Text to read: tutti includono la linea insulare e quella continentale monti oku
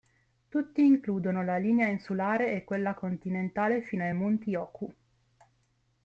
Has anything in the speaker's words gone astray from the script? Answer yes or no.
yes